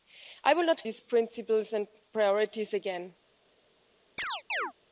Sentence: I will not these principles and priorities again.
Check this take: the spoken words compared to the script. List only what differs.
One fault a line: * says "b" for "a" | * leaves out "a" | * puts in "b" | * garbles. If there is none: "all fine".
all fine